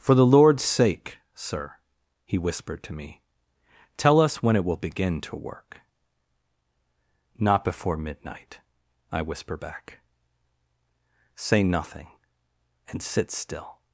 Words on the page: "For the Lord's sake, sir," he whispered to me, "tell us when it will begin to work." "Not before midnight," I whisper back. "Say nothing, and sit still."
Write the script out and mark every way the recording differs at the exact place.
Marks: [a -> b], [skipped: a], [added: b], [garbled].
"For the Lord's sake, sir," he whispered to me, "tell us when it will begin to work." "Not before midnight," I whisper back. "Say nothing, and sit still."